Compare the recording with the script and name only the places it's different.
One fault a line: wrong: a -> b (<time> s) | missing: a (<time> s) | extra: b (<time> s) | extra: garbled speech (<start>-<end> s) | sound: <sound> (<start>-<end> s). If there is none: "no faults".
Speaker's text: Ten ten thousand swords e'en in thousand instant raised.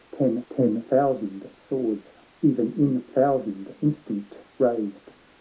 no faults